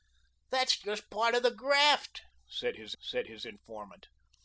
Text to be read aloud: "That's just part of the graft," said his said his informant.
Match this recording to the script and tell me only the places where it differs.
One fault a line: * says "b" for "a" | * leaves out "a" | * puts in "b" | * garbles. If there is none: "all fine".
all fine